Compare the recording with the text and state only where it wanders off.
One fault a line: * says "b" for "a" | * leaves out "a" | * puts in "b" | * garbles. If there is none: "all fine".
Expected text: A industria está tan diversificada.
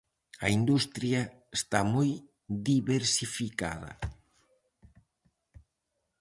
* says "moi" for "tan"